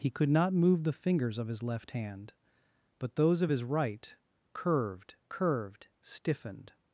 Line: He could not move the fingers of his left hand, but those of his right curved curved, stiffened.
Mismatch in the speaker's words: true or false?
false